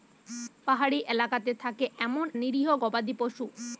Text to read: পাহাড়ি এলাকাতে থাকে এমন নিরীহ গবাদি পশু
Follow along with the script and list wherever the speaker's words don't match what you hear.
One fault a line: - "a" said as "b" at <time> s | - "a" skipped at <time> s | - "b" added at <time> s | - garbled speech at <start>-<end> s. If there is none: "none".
none